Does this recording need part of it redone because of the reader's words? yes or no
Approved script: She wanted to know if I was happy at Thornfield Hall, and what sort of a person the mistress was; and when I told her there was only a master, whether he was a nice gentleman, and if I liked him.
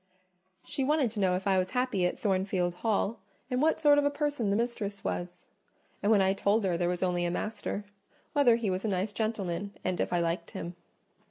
no